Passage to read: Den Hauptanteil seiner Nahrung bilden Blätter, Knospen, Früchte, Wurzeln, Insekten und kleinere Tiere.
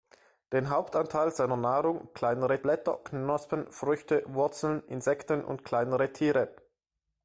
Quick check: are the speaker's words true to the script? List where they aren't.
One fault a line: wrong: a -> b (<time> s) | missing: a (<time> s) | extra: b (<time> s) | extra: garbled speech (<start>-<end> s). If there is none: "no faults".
wrong: bilden -> kleinere (2.1 s)